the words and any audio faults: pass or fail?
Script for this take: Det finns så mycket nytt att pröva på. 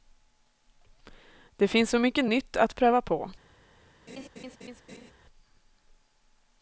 fail